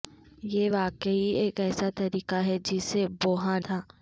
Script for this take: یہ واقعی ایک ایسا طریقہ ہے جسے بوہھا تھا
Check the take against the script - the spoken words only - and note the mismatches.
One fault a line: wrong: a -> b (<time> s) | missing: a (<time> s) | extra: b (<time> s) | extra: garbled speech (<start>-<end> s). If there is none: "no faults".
no faults